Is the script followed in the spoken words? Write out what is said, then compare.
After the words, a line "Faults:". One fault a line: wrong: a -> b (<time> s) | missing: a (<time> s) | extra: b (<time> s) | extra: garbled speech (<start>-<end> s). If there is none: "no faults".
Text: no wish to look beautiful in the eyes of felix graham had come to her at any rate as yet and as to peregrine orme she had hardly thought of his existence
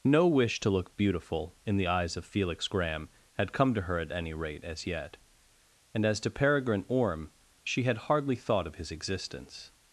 no wish to look beautiful in the eyes of felix graham had come to her at any rate as yet and as to peregrine orme she had hardly thought of his existence
Faults:
no faults